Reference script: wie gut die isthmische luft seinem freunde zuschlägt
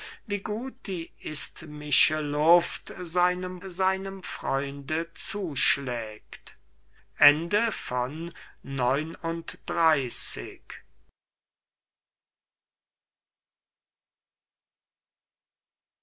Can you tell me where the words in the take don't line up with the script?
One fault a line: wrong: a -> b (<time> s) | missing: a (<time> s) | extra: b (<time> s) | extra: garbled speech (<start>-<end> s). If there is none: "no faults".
extra: seinem (3.6 s)